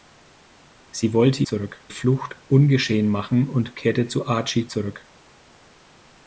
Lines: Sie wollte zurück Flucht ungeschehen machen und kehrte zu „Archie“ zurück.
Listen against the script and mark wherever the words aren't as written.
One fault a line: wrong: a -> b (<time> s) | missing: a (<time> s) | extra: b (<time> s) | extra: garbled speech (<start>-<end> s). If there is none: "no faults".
no faults